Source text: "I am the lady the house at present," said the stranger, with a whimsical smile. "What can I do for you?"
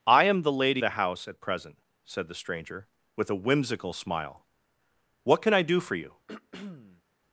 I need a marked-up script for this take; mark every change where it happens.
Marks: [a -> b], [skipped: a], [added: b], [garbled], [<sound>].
"I am the lady the house at present," said the stranger, with a whimsical smile. "What can I do for you?" [throat clearing]